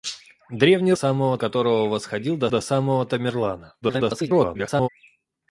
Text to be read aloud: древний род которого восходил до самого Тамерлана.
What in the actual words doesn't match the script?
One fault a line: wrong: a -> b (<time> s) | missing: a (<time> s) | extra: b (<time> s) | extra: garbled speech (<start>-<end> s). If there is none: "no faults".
wrong: род -> самого (0.9 s)
extra: до (2.5 s)
extra: garbled speech (3.8-4.9 s)